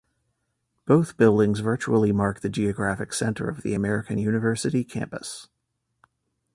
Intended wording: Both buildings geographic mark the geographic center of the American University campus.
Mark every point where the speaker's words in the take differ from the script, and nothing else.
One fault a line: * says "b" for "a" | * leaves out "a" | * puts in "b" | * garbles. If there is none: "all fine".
* says "virtually" for "geographic"